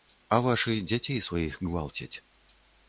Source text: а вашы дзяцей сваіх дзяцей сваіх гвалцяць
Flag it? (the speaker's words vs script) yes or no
yes